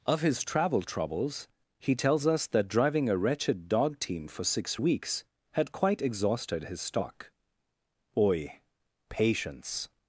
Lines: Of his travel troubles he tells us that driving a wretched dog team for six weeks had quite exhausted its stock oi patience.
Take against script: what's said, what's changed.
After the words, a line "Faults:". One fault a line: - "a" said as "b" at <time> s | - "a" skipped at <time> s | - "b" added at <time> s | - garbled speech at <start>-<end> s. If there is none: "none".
Of his travel troubles he tells us that driving a wretched dog team for six weeks had quite exhausted his stock oi patience.
Faults:
- "its" said as "his" at 6.6 s